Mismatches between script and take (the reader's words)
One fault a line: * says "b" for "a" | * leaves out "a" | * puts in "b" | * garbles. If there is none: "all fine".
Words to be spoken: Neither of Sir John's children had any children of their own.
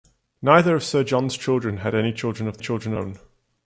* says "children" for "their"